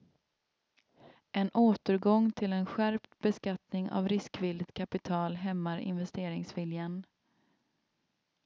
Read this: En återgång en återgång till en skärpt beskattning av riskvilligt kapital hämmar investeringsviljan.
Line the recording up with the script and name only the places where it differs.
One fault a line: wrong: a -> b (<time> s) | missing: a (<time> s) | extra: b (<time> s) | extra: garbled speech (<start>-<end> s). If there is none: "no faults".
missing: en återgång (2.3 s)